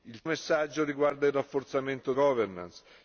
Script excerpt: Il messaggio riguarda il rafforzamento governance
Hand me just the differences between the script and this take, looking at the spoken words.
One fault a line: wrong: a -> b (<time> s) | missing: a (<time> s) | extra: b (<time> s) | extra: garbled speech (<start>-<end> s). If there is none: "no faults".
no faults